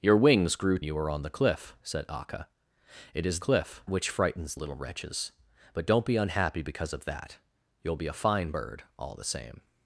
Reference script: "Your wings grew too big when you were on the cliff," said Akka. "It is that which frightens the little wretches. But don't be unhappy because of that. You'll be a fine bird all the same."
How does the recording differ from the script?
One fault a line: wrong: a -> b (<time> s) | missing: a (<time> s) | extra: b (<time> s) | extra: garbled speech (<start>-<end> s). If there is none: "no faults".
missing: too big when (0.8 s)
wrong: that -> cliff (3.4 s)
missing: the (4.5 s)